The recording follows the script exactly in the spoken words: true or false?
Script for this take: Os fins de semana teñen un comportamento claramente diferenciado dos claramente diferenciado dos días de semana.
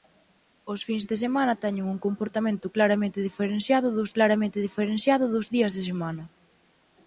true